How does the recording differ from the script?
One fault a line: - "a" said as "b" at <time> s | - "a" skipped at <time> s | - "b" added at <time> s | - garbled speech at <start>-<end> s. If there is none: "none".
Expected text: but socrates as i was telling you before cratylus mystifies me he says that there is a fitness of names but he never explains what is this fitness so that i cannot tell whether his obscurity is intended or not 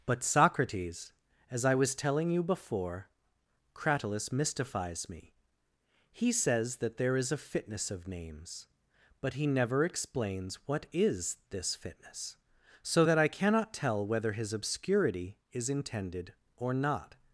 none